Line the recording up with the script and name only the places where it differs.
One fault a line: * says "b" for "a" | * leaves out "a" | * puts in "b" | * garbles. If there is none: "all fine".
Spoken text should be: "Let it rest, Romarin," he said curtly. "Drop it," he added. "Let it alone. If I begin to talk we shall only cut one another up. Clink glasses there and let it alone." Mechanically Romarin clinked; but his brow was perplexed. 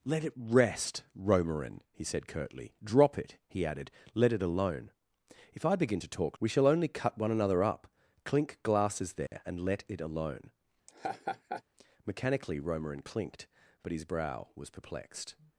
all fine